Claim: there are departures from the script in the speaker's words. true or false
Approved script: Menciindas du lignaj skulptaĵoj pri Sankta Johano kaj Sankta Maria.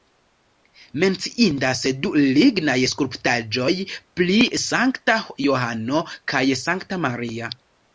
false